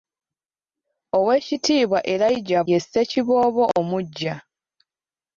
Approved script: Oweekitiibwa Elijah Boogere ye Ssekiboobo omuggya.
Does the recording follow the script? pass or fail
fail